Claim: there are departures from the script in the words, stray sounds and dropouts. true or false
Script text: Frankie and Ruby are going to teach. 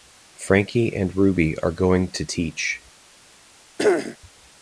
true